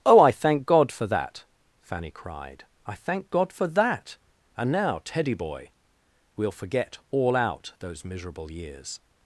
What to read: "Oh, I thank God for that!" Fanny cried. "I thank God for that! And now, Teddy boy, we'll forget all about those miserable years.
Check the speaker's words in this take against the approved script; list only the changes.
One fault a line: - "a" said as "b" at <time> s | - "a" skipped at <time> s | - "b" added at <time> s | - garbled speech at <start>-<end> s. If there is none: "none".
- "about" said as "out" at 7.3 s